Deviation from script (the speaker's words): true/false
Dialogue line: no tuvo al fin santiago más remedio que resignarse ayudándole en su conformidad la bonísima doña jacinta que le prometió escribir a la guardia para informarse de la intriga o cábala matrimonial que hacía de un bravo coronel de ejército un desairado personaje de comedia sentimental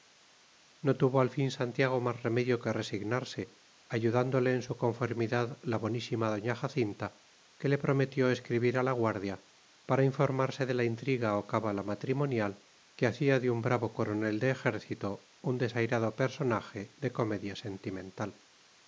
false